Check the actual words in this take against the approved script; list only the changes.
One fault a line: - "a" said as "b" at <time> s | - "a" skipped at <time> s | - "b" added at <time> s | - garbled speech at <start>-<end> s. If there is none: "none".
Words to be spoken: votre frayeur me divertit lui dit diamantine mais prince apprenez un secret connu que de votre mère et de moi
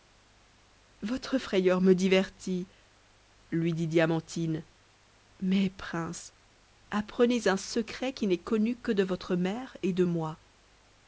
- "qui n'est" added at 8.1 s